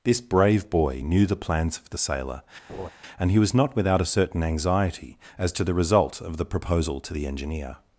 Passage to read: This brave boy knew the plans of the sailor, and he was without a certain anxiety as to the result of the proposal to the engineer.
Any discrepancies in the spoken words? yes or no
yes